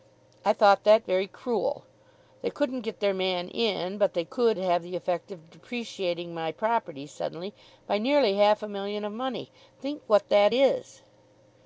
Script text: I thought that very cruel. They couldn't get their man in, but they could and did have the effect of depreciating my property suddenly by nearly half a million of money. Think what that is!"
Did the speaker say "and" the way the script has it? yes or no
no